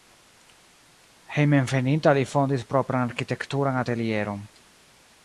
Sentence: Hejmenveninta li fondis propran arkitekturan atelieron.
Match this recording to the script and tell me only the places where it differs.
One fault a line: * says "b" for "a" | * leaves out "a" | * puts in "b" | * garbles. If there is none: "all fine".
all fine